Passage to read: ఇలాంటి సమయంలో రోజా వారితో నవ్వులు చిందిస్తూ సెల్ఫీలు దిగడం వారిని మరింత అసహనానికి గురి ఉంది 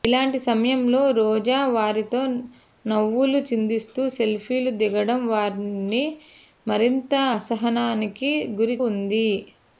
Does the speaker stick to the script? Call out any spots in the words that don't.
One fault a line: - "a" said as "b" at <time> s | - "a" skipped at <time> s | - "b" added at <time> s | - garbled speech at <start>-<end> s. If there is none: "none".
none